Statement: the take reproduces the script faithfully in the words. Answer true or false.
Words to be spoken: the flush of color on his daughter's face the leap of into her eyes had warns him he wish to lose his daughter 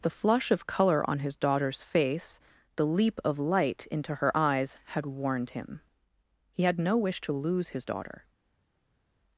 false